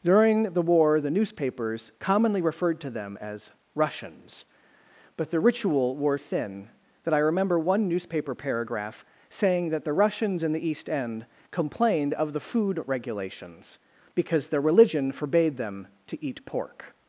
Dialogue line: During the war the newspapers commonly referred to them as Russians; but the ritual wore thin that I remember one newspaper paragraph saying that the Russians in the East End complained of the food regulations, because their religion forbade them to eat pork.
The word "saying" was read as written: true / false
true